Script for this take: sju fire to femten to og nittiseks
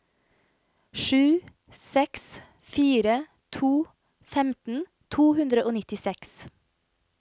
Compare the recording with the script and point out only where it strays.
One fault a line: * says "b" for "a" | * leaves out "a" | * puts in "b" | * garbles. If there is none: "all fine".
* puts in "seks"
* puts in "hundre"